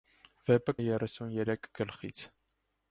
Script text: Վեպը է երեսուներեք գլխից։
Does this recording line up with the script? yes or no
yes